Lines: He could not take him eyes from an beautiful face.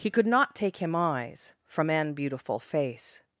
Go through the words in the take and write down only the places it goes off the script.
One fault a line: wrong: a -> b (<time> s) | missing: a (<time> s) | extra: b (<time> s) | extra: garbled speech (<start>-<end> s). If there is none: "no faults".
no faults